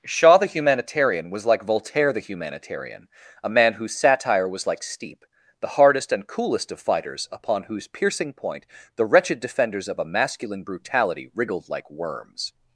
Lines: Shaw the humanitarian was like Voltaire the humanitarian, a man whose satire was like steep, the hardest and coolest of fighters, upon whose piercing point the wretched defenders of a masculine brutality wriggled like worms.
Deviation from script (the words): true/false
false